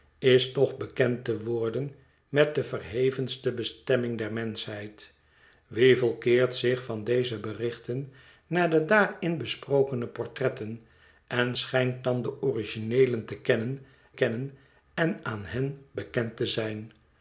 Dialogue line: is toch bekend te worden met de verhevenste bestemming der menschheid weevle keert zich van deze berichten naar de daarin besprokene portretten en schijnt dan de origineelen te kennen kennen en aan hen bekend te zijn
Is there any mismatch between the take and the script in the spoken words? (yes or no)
no